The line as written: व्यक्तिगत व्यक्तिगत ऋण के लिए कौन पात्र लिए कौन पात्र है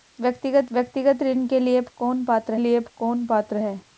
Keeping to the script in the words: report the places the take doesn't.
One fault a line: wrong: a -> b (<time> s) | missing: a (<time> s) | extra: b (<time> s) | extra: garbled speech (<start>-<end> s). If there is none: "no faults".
no faults